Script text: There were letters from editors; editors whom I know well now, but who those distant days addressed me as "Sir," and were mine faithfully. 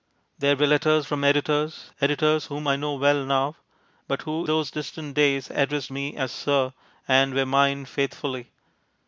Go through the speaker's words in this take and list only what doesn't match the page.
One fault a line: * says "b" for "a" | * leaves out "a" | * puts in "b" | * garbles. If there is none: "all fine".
all fine